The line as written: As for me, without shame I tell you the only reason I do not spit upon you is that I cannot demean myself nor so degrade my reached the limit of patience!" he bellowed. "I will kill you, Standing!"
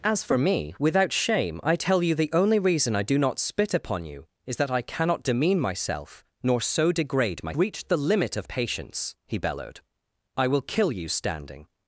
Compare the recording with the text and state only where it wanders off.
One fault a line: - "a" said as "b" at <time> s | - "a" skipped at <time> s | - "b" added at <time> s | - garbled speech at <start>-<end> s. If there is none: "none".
none